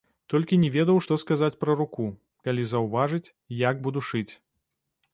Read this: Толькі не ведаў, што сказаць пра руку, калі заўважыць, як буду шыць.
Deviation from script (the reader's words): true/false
false